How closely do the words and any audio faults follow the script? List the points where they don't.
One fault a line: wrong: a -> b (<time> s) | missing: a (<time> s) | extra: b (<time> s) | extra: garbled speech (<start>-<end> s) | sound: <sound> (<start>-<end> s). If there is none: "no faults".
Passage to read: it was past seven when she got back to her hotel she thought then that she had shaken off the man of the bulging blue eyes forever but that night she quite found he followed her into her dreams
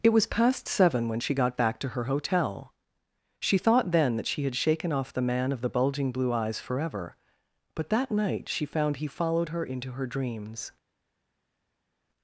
missing: quite (8.7 s)